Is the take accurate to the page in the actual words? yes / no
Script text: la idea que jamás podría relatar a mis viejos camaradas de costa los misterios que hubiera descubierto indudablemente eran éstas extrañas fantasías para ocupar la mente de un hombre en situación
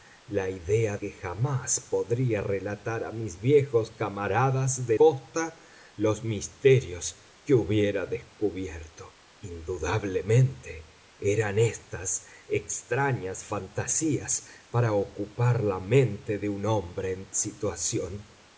yes